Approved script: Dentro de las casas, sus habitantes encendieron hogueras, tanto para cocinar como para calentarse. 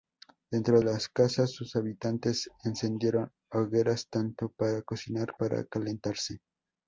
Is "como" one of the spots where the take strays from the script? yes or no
yes